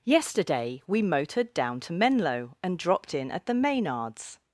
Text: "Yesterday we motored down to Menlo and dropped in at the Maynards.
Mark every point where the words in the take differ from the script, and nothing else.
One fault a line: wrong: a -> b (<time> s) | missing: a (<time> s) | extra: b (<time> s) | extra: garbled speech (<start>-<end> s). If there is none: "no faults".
no faults